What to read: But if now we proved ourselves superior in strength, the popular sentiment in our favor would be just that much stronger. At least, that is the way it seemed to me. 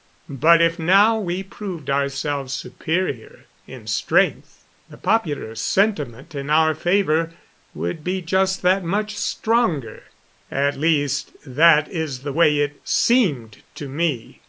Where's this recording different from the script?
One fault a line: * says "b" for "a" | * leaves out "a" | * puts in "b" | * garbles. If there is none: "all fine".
all fine